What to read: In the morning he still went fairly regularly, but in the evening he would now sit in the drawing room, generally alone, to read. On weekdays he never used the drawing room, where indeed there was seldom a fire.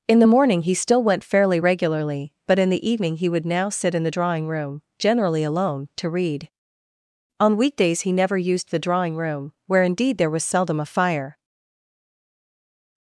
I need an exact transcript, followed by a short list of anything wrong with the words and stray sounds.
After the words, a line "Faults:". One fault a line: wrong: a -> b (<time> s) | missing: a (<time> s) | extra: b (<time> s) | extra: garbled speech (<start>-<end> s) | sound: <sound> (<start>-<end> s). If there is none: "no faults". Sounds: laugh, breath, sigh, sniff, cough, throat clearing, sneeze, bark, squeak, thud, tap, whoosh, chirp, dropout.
In the morning he still went fairly regularly, but in the evening he would now sit in the drawing room, generally alone, to read. On weekdays he never used the drawing room, where indeed there was seldom a fire.
Faults:
no faults